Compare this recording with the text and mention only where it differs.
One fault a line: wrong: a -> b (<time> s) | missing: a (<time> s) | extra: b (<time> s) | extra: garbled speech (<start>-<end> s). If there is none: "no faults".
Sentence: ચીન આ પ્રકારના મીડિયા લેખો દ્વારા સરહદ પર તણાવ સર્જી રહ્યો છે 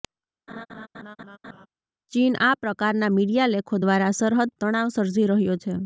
missing: પર (4.5 s)